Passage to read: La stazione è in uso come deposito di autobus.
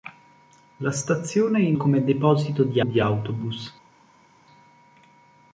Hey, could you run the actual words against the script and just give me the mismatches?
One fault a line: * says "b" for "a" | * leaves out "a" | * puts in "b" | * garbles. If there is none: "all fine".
* leaves out "uso"
* puts in "di"